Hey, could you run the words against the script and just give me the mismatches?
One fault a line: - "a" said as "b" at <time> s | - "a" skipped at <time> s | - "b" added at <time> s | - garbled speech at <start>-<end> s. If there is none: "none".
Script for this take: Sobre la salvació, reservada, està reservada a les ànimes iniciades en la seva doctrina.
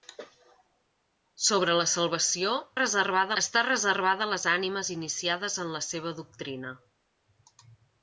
none